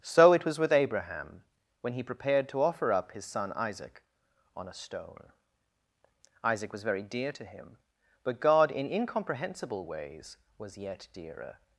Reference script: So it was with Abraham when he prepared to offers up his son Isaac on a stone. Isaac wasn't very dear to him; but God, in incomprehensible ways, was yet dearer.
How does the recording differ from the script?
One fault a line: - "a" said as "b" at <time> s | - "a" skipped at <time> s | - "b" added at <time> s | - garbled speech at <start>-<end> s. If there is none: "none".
- "offers" said as "offer" at 2.6 s
- "wasn't" said as "was" at 6.7 s